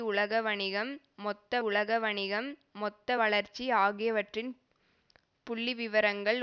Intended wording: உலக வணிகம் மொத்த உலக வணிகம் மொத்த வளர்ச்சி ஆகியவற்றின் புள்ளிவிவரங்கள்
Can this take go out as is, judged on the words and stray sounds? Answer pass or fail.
pass